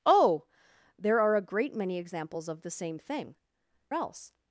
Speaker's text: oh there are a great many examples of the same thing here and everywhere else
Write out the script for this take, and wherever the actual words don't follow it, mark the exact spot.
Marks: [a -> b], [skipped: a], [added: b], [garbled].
oh there are a great many examples of the same thing [skipped: here and everywhere] else